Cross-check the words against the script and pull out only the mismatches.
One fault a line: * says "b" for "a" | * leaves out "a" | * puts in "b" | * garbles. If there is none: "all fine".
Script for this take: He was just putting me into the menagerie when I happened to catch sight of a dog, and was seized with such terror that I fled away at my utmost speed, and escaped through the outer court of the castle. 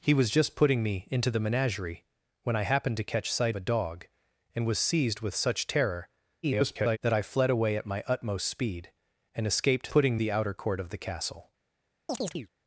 * leaves out "of"
* garbles
* says "putting" for "through"